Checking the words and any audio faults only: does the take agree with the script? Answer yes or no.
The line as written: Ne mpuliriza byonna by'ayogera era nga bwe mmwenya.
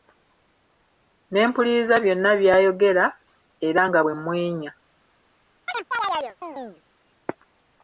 no